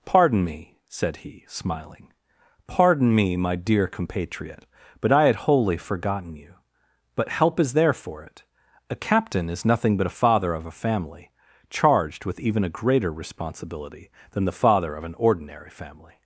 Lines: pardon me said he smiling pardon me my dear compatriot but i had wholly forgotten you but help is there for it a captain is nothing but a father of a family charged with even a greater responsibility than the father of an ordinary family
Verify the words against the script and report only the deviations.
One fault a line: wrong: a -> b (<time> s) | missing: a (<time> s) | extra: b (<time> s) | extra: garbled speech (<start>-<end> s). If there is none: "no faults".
no faults